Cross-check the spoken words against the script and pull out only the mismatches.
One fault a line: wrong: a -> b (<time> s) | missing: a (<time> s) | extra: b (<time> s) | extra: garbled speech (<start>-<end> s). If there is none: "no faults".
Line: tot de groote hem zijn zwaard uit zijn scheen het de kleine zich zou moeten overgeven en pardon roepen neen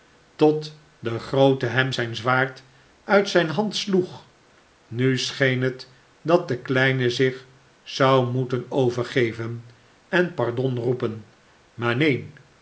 extra: hand sloeg nu (3.5 s)
extra: dat (6.2 s)
extra: maar (11.7 s)